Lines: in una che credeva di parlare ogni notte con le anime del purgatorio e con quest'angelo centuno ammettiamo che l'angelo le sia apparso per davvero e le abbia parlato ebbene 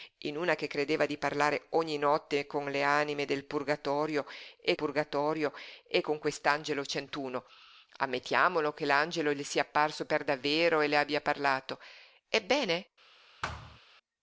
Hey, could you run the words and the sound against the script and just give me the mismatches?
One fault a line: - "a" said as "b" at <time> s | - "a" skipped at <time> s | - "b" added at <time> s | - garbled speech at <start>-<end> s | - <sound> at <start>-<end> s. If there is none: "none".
- "purgatorio e" added at 4.7 s
- thud at 13.4-13.8 s